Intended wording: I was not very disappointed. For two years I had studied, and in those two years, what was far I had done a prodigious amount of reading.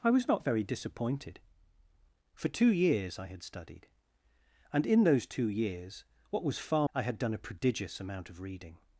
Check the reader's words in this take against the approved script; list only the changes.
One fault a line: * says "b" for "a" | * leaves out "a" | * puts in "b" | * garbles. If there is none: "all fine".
all fine